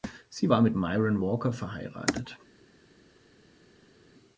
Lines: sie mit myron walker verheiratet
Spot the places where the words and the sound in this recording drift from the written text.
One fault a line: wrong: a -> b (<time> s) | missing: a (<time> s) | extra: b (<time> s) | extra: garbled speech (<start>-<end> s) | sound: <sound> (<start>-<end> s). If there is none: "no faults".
extra: war (0.5 s)